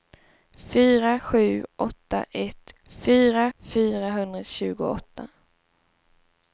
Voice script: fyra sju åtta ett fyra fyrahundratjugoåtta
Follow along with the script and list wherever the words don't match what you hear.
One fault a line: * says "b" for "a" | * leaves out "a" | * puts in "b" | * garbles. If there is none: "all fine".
all fine